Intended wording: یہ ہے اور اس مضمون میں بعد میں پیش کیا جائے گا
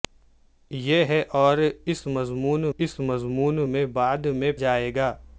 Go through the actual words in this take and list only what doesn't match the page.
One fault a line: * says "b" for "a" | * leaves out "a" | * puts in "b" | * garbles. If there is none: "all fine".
* puts in "اس مضمون"
* leaves out "پیش کیا"